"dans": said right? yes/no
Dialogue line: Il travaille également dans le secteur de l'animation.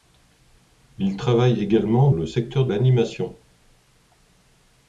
no